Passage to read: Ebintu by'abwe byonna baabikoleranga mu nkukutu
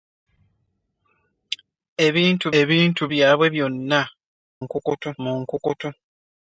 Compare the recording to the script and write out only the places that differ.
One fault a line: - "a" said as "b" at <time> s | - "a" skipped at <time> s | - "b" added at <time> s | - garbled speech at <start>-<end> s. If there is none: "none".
- "ebintu" added at 2.6 s
- "baabikoleranga" said as "nkukutu" at 4.6 s